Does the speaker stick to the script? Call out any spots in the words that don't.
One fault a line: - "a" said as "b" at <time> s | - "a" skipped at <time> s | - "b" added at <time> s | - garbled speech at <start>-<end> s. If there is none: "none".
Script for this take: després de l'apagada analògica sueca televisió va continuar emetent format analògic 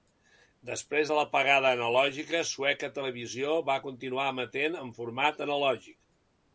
- "en" added at 4.8 s